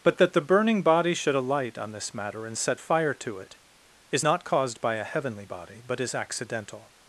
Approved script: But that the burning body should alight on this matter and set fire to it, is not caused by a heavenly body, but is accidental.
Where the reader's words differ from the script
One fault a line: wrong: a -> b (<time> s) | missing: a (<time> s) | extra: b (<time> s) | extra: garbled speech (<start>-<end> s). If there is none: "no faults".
no faults